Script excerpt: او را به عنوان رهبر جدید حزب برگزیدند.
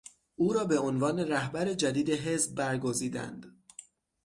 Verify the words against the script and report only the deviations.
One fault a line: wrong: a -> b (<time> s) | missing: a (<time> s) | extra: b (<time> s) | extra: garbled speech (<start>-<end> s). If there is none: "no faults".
no faults